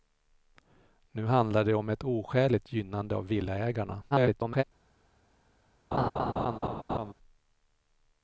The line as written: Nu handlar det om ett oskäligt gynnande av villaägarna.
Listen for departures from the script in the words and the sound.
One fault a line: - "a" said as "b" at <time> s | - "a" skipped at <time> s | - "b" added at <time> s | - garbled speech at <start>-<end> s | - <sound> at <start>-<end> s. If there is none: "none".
- garbled speech at 4.1-4.6 s
- laugh at 5.9-7.1 s